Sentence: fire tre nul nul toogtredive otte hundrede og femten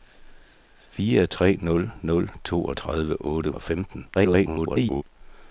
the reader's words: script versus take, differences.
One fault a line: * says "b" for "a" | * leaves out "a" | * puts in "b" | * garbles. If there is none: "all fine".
* leaves out "hundrede"
* garbles